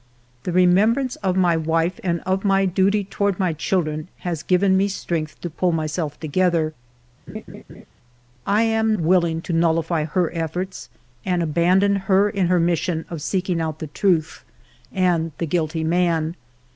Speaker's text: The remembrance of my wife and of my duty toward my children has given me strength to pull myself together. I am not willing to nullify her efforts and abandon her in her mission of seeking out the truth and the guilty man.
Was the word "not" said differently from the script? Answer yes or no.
yes